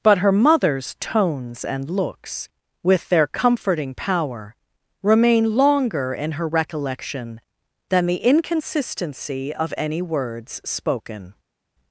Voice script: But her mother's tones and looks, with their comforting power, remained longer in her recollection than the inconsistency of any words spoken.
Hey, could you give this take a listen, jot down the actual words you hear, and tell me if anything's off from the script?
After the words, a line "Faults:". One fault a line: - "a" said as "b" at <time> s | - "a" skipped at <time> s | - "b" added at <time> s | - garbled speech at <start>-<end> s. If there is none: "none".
But her mother's tones and looks, with their comforting power, remain longer in her recollection than the inconsistency of any words spoken.
Faults:
- "remained" said as "remain" at 5.0 s